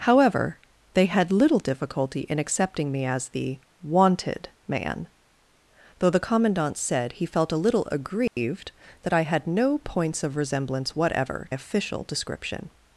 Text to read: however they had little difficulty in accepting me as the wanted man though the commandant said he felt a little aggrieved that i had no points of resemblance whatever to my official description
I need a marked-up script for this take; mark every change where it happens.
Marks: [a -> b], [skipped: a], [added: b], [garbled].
however they had little difficulty in accepting me as the wanted man though the commandant said he felt a little aggrieved that i had no points of resemblance whatever [skipped: to my] official description